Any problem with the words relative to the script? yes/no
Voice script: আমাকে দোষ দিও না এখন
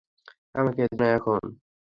yes